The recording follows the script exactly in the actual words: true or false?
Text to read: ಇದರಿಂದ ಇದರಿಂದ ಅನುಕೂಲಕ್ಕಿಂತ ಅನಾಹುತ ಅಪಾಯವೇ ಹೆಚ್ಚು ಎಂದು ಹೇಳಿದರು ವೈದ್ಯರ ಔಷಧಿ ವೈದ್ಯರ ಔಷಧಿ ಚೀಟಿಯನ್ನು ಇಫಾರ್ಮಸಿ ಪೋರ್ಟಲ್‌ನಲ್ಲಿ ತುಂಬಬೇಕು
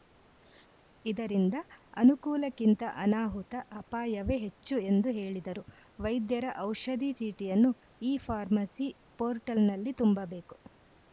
false